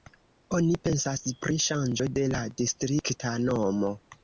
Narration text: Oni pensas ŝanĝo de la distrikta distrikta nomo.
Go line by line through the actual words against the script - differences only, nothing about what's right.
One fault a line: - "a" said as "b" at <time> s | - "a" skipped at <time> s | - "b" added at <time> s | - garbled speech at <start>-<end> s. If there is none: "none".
- "pri" added at 1.4 s
- "distrikta" skipped at 3.4 s